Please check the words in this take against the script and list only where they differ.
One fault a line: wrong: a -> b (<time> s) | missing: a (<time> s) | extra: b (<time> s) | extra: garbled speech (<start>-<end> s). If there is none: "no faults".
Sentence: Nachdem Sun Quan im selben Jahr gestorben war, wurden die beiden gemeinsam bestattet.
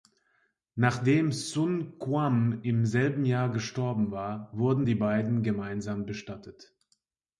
no faults